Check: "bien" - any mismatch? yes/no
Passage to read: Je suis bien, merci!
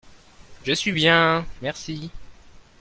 no